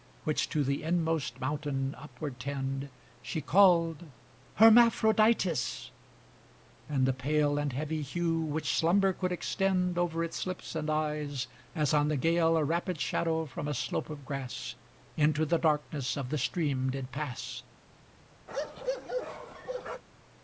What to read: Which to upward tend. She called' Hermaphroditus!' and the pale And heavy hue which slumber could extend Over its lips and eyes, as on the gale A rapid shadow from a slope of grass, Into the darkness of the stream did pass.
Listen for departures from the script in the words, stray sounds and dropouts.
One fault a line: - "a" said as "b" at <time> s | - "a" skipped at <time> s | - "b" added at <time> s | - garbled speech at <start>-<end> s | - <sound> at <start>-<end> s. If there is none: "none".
- "the inmost mountain" added at 0.6 s
- bark at 18.5-20.0 s